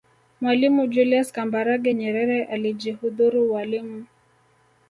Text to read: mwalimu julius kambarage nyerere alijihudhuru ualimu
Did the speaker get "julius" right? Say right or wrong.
right